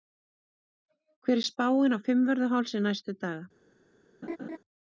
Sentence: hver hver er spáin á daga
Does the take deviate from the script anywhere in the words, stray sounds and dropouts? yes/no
yes